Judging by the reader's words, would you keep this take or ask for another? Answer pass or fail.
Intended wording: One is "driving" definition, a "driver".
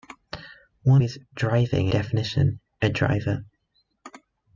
pass